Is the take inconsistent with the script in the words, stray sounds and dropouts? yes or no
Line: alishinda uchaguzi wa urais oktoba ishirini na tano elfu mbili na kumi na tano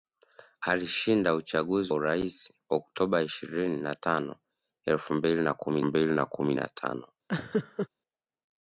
yes